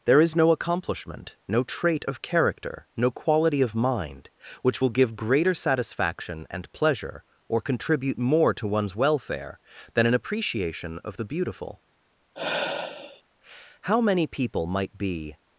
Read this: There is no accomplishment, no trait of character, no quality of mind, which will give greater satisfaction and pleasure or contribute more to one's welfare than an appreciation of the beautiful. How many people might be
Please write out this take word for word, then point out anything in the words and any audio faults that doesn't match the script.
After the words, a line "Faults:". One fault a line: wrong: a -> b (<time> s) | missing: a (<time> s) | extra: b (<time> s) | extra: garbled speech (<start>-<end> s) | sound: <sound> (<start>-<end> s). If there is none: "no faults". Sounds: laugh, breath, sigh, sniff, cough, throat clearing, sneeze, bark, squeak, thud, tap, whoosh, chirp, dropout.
There is no accomplishment, no trait of character, no quality of mind, which will give greater satisfaction and pleasure or contribute more to one's welfare than an appreciation of the beautiful. How many people might be
Faults:
sound: sigh (12.3-13.2 s)